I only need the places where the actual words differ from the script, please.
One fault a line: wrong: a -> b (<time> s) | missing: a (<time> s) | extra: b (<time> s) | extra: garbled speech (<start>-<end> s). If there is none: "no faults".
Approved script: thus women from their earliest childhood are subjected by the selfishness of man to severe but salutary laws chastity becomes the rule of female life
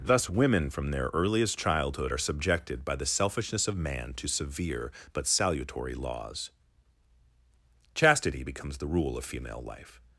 no faults